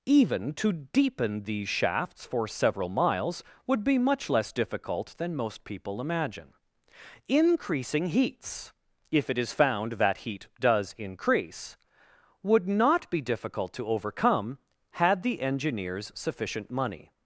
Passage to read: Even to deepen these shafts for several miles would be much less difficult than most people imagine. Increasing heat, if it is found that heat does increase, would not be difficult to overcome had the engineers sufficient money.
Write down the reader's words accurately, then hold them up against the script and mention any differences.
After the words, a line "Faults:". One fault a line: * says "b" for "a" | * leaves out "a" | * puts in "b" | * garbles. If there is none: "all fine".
Even to deepen these shafts for several miles would be much less difficult than most people imagine. Increasing heats, if it is found that heat does increase, would not be difficult to overcome had the engineers sufficient money.
Faults:
* says "heats" for "heat"